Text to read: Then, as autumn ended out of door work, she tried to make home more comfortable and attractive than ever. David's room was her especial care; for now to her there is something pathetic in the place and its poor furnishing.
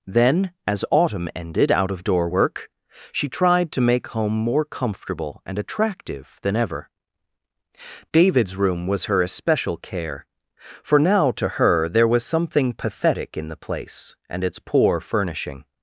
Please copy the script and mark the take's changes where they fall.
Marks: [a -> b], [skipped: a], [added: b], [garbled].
Then, as autumn ended out of door work, she tried to make home more comfortable and attractive than ever. David's room was her especial care; for now to her there [is -> was] something pathetic in the place and its poor furnishing.